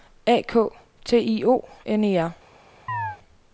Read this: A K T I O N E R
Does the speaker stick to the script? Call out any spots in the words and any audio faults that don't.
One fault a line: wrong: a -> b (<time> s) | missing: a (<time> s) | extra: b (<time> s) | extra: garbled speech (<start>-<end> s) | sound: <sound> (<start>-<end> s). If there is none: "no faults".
sound: chirp (2.9-3.2 s)